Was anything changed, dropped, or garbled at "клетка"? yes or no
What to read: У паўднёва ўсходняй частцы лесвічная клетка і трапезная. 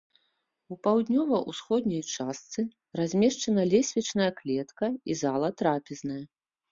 no